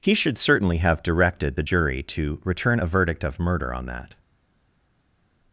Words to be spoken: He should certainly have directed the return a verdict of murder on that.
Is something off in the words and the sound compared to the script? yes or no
yes